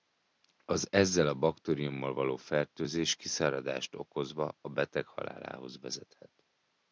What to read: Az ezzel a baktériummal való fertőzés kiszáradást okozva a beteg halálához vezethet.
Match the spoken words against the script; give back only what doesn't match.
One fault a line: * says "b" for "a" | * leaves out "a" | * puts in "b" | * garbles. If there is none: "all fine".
all fine